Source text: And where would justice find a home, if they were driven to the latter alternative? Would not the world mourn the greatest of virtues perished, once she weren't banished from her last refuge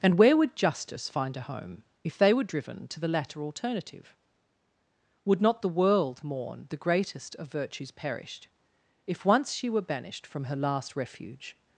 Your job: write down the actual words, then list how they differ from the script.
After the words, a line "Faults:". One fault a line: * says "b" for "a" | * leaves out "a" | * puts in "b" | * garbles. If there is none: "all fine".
And where would justice find a home, if they were driven to the latter alternative? Would not the world mourn the greatest of virtues perished, if once she were banished from her last refuge
Faults:
* puts in "if"
* says "were" for "weren't"